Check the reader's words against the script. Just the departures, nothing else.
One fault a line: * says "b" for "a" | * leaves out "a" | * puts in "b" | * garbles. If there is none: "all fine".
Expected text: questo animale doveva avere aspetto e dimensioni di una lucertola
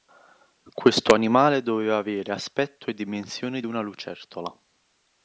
all fine